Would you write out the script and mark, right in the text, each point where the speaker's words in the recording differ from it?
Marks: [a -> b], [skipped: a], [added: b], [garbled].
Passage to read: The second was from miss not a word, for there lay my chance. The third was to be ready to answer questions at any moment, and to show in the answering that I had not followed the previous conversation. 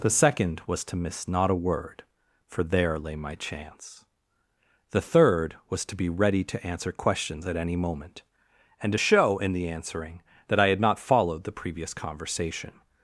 The second was [from -> to] miss not a word, for there lay my chance. The third was to be ready to answer questions at any moment, and to show in the answering that I had not followed the previous conversation.